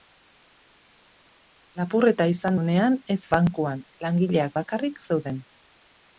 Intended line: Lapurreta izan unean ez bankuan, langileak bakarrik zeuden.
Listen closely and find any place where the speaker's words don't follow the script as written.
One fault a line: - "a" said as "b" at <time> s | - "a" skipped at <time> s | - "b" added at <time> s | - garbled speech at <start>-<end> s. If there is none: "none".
none